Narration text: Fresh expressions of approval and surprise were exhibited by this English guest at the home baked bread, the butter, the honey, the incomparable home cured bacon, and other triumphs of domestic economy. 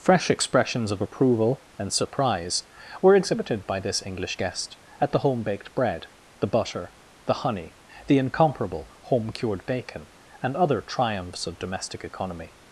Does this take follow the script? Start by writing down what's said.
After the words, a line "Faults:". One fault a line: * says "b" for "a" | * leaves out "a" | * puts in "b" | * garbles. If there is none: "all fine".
Fresh expressions of approval and surprise were exhibited by this English guest at the home baked bread, the butter, the honey, the incomparable home cured bacon, and other triumphs of domestic economy.
Faults:
all fine